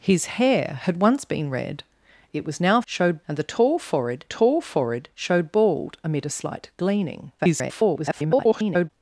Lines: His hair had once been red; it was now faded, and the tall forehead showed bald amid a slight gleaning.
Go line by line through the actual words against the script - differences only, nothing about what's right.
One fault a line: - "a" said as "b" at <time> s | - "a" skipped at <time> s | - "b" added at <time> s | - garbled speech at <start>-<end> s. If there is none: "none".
- "faded" said as "showed" at 2.9 s
- "tall forehead" added at 4.3 s
- garbled speech at 7.4-8.9 s